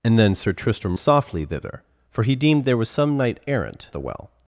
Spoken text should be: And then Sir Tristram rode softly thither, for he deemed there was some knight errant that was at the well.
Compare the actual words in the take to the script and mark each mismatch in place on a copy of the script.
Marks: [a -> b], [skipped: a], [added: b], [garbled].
And then Sir Tristram [skipped: rode] softly thither, for he deemed there was some knight errant [skipped: that was at] the well.